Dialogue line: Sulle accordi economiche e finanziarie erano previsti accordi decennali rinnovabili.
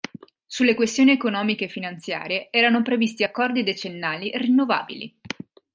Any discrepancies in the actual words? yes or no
yes